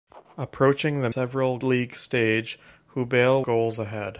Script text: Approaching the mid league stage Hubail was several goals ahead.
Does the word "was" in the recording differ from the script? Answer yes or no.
yes